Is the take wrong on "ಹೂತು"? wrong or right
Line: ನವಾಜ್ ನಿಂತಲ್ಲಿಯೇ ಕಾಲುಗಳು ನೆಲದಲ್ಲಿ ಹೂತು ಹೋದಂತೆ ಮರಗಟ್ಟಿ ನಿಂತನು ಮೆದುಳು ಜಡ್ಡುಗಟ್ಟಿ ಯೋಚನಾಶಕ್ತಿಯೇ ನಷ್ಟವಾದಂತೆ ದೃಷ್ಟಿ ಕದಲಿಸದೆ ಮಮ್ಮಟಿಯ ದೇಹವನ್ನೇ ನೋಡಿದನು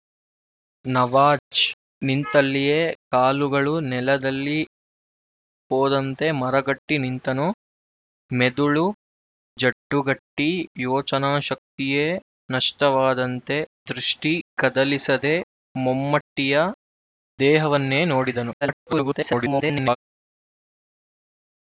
wrong